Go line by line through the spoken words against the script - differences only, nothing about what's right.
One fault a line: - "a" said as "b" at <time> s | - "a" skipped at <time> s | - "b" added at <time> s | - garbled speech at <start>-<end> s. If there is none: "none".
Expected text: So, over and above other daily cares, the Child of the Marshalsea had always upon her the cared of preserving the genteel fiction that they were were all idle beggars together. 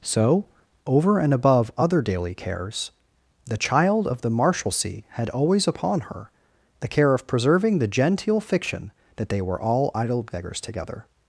- "cared" said as "care" at 6.9 s
- "were" skipped at 9.6 s